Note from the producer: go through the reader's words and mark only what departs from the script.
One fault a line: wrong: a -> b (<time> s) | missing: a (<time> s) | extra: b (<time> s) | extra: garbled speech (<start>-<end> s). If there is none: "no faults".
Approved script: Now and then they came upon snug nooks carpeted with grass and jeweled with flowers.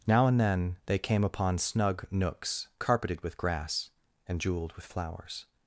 no faults